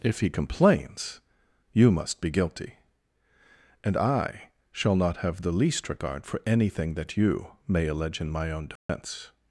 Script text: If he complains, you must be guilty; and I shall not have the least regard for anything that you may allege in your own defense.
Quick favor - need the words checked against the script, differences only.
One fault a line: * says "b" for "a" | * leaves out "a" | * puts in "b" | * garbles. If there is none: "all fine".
* says "my" for "your"